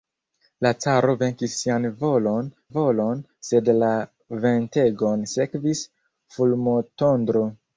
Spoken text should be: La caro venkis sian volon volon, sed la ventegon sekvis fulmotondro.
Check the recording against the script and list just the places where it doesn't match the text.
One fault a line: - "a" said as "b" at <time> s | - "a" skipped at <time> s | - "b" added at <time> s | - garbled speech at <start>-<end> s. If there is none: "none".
none